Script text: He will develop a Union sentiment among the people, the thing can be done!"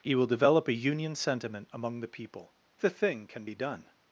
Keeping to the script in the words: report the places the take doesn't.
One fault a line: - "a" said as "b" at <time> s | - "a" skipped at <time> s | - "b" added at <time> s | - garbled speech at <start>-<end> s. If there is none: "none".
none